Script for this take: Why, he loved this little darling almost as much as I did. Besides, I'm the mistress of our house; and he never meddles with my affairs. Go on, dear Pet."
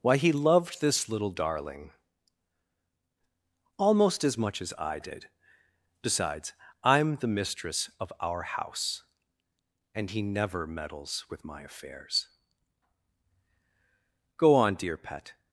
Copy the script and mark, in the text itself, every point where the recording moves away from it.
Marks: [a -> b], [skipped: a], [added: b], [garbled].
Why, he loved this little darling almost as much as I did. Besides, I'm the mistress of our house; and he never meddles with my affairs. Go on, dear Pet."